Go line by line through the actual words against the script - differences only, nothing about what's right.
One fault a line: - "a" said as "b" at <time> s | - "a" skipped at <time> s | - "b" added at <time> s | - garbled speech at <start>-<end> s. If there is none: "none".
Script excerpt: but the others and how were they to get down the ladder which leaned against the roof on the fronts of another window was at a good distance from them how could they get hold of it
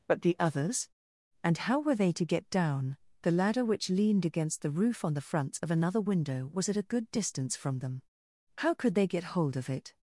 none